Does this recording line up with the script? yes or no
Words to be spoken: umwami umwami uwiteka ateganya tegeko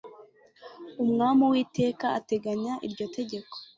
no